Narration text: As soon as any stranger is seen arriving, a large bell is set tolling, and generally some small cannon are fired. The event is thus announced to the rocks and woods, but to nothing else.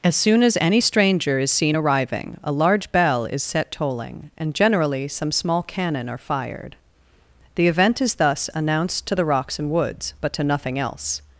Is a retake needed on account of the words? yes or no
no